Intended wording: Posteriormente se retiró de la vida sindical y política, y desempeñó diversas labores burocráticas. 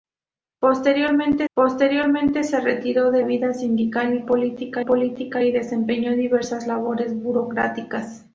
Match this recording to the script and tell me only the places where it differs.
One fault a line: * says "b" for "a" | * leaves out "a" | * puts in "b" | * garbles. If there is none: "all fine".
* puts in "posteriormente"
* leaves out "la"
* puts in "política"